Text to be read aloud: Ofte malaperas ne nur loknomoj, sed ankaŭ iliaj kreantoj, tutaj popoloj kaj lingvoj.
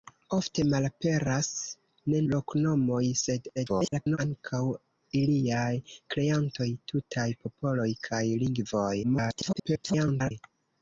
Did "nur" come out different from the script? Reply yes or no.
yes